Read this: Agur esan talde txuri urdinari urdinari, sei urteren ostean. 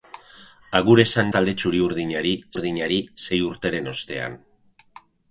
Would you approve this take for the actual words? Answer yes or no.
yes